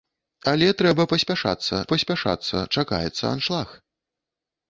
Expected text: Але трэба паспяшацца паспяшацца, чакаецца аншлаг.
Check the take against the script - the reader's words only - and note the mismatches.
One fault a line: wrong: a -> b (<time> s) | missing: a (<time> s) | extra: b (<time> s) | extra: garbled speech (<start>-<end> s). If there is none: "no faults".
no faults